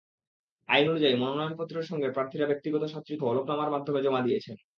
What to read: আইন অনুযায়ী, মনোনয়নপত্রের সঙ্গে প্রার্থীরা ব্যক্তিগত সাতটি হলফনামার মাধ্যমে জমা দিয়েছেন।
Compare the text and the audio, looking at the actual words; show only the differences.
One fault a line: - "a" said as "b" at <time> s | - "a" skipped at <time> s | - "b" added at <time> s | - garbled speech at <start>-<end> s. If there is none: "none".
none